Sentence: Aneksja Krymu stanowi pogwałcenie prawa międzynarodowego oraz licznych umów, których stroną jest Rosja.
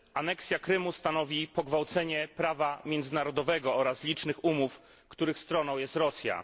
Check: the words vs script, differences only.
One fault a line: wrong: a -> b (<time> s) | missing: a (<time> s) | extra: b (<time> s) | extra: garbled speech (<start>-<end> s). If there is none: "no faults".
no faults